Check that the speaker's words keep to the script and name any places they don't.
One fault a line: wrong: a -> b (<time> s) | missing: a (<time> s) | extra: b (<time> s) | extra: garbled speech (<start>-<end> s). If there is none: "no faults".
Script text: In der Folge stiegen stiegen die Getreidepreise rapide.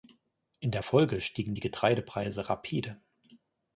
missing: stiegen (1.6 s)